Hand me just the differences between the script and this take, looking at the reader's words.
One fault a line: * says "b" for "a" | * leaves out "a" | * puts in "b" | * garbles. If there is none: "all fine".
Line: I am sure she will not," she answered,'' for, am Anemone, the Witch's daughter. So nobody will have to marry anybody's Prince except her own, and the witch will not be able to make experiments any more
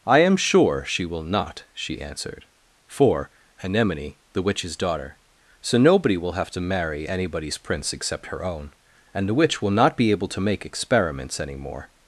* leaves out "am"